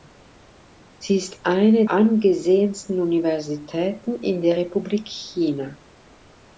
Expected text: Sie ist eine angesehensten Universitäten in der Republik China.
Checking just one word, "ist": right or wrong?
right